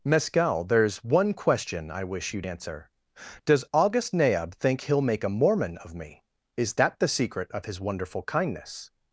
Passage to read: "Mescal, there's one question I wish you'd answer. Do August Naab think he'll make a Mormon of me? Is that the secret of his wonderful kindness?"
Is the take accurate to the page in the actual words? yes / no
no